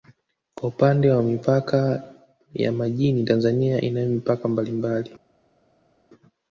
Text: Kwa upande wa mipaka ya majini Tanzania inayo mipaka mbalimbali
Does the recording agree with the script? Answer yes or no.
yes